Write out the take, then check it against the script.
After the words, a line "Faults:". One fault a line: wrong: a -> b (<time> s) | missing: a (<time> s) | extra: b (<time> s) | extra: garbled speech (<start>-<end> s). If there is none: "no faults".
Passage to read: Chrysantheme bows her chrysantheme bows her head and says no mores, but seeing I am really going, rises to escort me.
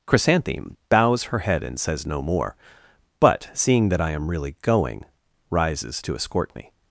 Chrysantheme bows her head and says no more, but seeing that I am really going, rises to escort me.
Faults:
missing: chrysantheme bows her (1.4 s)
wrong: mores -> more (2.2 s)
extra: that (3.9 s)